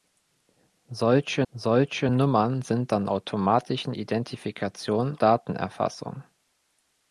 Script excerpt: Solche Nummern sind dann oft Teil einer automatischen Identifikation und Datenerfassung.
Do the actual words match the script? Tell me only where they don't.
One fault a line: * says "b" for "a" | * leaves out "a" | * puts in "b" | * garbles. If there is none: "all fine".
* puts in "solche"
* leaves out "oft Teil einer"
* leaves out "und"